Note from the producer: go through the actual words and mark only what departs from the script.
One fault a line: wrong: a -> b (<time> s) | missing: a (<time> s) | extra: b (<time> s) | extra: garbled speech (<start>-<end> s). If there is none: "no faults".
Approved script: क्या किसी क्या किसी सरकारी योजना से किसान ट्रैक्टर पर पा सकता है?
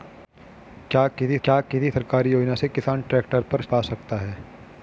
no faults